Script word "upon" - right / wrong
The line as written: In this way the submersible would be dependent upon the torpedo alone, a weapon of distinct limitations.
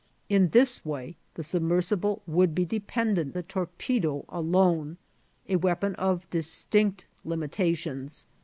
wrong